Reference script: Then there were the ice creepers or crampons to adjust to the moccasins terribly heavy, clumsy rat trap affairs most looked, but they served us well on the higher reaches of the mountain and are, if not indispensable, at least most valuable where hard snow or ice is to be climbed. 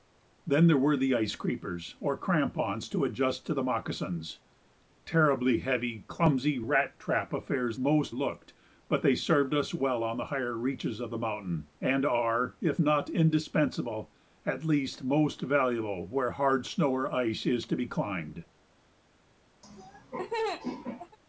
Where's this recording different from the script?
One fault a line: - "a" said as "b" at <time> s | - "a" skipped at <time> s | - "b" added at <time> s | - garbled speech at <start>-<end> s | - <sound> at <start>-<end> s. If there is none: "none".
- laugh at 19.6-21.2 s